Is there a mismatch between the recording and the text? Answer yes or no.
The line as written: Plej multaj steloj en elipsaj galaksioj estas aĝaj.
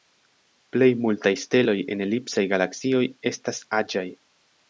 no